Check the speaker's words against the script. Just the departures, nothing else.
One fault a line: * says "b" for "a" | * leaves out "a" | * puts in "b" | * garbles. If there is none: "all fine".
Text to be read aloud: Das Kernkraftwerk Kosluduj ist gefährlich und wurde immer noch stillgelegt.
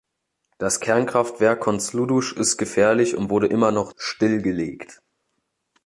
all fine